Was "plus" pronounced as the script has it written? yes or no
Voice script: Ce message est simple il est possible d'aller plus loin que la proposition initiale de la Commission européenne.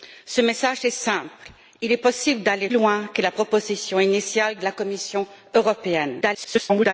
no